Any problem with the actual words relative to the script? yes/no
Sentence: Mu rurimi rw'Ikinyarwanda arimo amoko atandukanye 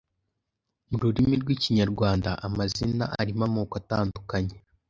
yes